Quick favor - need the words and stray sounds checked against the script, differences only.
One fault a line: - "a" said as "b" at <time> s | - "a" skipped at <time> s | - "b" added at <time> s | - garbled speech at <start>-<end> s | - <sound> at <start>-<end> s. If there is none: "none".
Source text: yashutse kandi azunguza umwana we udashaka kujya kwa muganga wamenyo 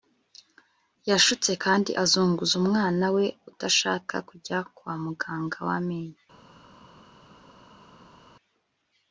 none